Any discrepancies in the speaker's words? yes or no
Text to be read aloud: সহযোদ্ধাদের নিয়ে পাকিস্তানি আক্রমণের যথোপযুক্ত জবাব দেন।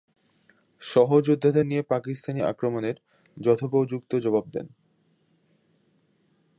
no